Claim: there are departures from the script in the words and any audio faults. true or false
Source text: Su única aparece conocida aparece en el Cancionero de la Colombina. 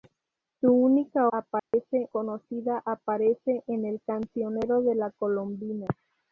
true